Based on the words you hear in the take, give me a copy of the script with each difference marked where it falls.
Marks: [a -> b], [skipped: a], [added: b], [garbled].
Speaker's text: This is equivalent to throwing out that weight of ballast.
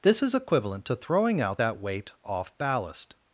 This is equivalent to throwing out that weight [of -> off] ballast.